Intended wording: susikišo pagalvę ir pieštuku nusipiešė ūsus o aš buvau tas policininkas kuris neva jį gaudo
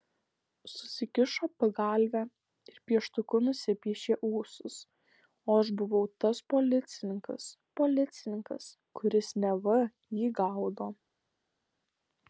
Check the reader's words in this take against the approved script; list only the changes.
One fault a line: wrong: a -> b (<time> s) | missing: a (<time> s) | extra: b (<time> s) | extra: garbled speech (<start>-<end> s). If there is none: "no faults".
extra: policininkas (7.8 s)